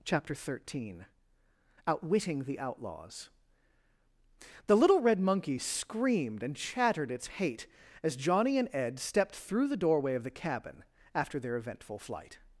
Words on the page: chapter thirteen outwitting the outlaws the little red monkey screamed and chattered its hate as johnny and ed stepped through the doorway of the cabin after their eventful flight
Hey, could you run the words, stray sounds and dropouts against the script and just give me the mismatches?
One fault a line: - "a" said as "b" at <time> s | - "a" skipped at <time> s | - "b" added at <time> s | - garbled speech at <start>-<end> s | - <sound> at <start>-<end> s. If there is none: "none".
none